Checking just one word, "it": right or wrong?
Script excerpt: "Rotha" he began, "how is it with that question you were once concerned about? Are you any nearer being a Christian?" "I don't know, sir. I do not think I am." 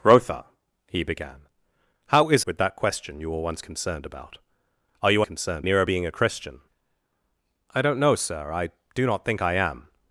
wrong